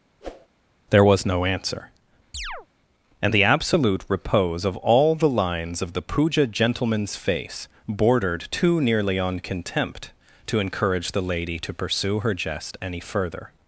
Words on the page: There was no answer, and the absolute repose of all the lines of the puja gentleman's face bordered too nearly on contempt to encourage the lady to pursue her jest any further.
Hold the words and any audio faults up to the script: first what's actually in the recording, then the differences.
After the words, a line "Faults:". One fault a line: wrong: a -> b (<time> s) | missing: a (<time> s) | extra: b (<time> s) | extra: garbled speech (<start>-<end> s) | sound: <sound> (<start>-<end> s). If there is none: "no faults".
There was no answer, and the absolute repose of all the lines of the puja gentleman's face bordered too nearly on contempt to encourage the lady to pursue her jest any further.
Faults:
sound: whoosh (0.2-0.5 s)
sound: chirp (2.3-2.7 s)